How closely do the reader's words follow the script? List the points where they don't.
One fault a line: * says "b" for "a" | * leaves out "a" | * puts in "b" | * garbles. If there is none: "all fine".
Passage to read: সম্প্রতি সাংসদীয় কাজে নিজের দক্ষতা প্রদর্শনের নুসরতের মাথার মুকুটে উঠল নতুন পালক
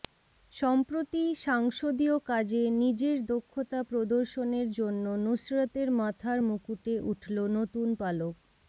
* puts in "জন্য"